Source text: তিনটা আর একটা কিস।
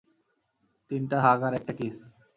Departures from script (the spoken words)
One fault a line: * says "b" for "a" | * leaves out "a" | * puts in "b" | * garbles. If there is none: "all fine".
* puts in "হাগ"